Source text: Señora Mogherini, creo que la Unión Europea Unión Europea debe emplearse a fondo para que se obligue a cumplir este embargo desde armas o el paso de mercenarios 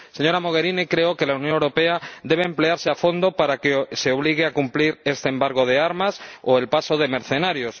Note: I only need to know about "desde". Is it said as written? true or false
false